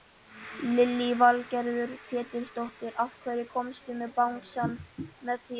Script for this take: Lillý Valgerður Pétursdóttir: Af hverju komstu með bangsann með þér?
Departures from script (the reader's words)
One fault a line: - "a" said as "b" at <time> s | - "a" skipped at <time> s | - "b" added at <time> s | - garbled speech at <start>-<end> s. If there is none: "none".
none